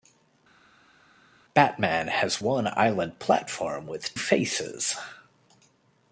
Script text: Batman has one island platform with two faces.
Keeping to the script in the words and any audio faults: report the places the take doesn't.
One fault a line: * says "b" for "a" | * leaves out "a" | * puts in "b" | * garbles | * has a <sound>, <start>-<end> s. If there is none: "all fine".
* leaves out "two"